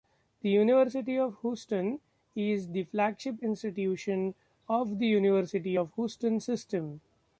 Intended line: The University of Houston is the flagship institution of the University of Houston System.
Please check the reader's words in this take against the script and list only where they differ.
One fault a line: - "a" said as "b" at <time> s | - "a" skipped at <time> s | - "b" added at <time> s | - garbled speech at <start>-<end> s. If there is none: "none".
none